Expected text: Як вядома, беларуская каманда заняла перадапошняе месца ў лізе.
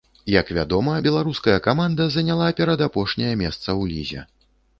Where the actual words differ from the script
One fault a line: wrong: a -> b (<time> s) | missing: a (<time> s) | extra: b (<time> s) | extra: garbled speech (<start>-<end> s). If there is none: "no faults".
no faults